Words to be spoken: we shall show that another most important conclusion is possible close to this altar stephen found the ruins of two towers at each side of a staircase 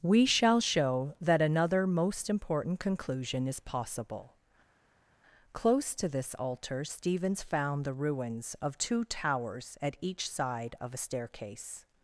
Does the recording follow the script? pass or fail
fail